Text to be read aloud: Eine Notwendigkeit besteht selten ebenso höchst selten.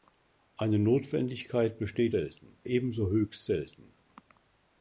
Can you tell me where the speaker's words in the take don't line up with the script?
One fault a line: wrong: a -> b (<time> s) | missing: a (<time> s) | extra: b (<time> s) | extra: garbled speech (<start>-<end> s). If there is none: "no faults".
no faults